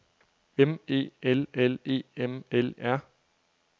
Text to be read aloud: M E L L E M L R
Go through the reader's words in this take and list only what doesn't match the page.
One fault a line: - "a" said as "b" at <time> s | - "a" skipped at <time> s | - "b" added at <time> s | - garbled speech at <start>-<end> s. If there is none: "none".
none